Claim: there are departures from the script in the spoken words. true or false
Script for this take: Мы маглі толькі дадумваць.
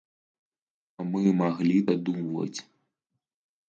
true